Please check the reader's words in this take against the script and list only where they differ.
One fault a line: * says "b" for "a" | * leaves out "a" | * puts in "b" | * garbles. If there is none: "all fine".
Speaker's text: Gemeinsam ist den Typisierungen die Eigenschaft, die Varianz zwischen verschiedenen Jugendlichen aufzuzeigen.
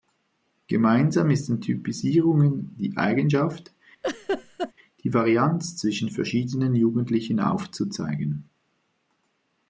all fine